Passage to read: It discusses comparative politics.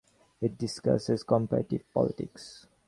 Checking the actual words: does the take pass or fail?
pass